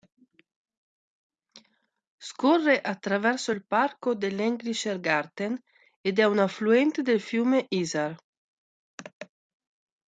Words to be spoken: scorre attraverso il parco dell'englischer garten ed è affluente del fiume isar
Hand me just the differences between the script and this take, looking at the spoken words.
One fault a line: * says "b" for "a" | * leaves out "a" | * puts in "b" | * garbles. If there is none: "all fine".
* puts in "un"